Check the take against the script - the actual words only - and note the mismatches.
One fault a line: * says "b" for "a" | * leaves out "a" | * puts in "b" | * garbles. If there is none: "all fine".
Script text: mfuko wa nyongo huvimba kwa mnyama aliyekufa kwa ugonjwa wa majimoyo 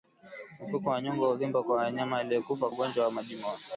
* leaves out "kwa"